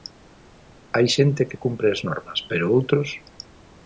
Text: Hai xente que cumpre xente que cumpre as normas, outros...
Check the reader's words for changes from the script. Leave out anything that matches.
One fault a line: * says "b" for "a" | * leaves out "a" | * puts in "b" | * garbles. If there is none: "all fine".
* leaves out "xente que cumpre"
* puts in "pero"